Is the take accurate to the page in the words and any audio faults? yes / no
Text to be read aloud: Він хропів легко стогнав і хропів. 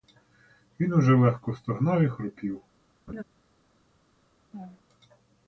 no